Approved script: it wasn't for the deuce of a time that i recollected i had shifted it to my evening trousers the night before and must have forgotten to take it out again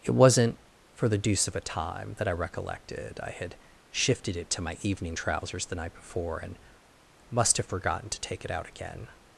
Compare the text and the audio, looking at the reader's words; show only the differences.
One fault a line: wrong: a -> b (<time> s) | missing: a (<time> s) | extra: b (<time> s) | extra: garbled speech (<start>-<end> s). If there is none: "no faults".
no faults